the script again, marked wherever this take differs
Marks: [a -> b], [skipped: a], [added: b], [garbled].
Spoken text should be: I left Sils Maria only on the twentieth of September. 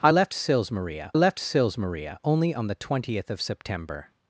I left Sils Maria [added: left Sils Maria] only on the twentieth of September.